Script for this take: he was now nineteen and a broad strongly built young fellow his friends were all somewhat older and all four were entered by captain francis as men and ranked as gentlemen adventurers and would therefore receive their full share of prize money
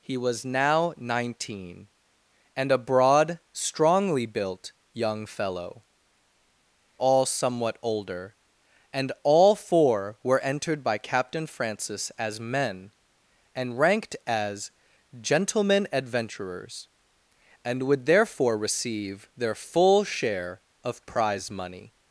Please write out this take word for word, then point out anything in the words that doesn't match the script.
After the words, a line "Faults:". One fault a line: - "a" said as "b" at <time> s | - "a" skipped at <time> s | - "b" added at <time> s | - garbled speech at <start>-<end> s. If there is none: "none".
he was now nineteen and a broad strongly built young fellow all somewhat older and all four were entered by captain francis as men and ranked as gentlemen adventurers and would therefore receive their full share of prize money
Faults:
- "his friends were" skipped at 5.8 s